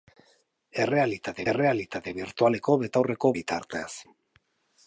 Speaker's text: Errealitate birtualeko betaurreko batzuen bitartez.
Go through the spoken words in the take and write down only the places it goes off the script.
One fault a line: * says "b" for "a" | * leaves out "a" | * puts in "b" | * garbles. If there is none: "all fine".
* puts in "errealitate"
* leaves out "batzuen"